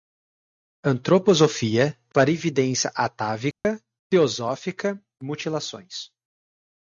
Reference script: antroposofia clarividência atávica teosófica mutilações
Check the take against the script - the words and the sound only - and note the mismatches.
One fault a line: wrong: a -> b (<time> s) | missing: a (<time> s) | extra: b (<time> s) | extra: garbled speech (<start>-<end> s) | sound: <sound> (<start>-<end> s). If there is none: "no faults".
sound: dropout (3.5-3.6 s)